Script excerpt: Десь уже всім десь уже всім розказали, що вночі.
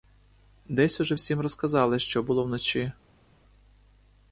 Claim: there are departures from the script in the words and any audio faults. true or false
true